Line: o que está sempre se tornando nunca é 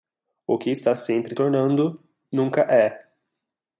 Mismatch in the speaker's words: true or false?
true